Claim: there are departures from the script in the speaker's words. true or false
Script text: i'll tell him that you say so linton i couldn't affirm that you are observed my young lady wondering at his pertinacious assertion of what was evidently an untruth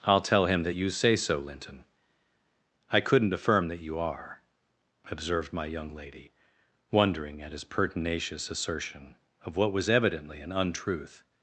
false